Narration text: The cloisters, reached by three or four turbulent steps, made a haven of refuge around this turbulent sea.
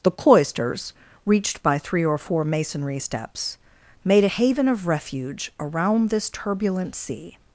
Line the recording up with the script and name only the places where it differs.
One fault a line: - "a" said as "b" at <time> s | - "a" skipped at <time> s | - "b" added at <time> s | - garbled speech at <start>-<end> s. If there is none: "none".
- "turbulent" said as "masonry" at 2.4 s